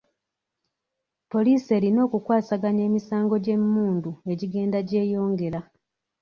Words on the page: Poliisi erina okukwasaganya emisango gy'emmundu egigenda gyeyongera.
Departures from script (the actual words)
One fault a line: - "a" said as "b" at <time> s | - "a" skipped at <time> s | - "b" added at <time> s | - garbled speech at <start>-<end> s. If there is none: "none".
none